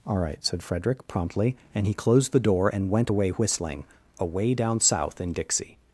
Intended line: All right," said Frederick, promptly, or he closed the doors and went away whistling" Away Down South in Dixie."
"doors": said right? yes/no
no